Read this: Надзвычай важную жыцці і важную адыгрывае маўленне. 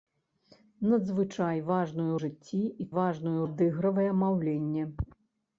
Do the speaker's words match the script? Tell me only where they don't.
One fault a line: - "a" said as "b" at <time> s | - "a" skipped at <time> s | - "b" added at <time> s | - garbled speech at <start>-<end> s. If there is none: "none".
none